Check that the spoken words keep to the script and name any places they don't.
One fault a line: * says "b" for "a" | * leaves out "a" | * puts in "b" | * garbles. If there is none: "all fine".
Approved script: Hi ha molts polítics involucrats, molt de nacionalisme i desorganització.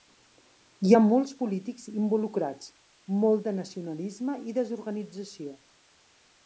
all fine